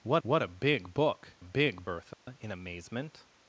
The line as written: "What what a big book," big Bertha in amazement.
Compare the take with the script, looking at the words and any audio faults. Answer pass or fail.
fail